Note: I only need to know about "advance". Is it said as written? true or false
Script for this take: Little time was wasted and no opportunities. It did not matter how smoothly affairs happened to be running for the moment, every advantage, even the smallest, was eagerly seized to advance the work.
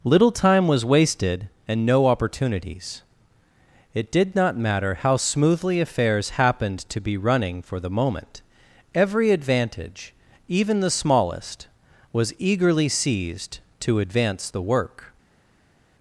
true